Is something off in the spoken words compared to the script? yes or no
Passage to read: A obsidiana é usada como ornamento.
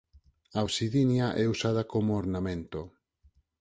no